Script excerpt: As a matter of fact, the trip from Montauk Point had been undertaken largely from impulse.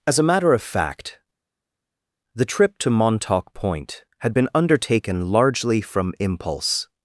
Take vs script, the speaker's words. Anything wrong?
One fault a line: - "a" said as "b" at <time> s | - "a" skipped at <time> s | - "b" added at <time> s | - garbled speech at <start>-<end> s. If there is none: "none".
- "from" said as "to" at 2.8 s